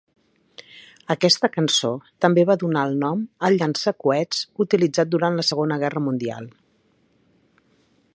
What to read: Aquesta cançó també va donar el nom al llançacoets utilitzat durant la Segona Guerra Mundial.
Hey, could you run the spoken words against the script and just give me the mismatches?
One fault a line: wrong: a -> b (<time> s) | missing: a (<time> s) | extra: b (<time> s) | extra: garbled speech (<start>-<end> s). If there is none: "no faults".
no faults